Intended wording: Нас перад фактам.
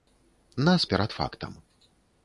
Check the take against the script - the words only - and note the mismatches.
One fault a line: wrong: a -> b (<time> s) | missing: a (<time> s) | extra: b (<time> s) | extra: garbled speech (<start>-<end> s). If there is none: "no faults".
no faults